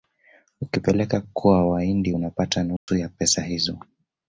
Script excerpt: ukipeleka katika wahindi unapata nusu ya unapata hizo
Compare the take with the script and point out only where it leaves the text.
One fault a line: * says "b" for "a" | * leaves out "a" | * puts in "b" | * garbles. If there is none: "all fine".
* says "kwa" for "katika"
* says "pesa" for "unapata"